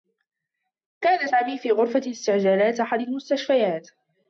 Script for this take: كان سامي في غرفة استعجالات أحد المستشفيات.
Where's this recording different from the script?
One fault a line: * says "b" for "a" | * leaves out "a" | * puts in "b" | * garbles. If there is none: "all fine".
all fine